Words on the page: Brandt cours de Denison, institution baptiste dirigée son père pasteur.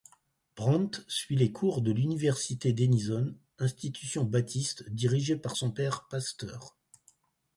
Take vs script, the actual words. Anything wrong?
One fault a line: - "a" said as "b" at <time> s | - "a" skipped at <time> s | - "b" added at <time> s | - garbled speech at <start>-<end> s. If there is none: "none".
- "suit les" added at 1.1 s
- "l'université" added at 1.9 s
- "par" added at 5.3 s